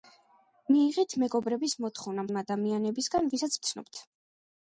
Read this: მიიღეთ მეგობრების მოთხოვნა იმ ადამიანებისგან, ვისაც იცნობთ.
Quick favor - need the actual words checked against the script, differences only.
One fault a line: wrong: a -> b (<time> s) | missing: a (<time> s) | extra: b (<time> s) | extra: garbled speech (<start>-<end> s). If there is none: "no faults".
no faults